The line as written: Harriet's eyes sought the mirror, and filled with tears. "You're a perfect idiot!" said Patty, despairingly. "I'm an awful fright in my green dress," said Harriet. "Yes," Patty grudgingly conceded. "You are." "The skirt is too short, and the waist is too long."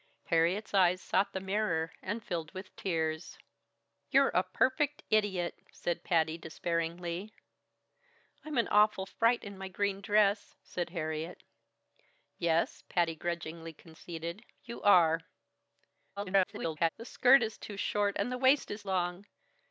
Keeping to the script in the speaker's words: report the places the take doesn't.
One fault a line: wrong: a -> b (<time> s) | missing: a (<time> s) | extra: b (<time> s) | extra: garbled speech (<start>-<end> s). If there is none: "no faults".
extra: garbled speech (16.2-16.9 s)
missing: too (18.8 s)